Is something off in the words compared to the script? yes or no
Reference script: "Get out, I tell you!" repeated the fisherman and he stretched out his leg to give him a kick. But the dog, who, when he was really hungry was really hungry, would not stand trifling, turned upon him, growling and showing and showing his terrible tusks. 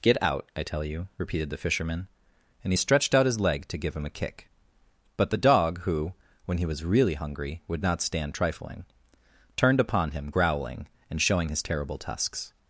yes